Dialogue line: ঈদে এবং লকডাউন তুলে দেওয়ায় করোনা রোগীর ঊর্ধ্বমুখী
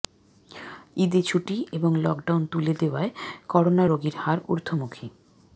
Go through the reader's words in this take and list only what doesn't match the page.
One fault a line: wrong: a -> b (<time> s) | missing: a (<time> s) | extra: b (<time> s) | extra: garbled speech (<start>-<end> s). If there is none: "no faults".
extra: ছুটি (1.2 s)
extra: হার (4.2 s)